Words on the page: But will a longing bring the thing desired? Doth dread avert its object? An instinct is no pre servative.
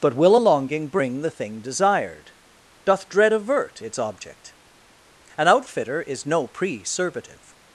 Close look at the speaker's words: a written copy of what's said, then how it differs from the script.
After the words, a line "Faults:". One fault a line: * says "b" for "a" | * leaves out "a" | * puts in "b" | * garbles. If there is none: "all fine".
But will a longing bring the thing desired? Doth dread avert its object? An outfitter is no pre servative.
Faults:
* says "outfitter" for "instinct"